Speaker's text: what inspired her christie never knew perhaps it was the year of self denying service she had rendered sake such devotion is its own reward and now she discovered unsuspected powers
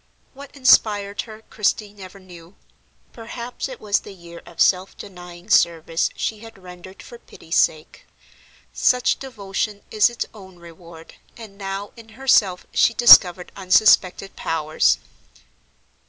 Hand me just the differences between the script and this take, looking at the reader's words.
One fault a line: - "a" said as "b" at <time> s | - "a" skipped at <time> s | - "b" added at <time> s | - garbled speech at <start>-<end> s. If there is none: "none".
- "for pity's" added at 7.0 s
- "in herself" added at 12.0 s